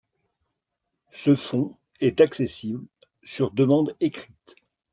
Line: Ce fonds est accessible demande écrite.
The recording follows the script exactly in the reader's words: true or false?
false